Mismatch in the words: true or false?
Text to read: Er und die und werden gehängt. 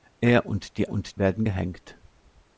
false